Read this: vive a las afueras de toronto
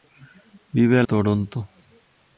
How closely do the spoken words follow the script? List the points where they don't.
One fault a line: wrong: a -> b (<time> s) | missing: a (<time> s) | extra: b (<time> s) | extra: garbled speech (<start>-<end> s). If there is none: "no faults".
missing: las afueras de (1.0 s)